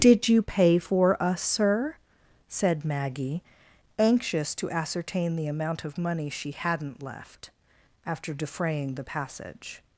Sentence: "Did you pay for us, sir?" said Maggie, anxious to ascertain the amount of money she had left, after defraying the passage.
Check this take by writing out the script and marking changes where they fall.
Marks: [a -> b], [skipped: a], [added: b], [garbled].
"Did you pay for us, sir?" said Maggie, anxious to ascertain the amount of money she [had -> hadn't] left, after defraying the passage.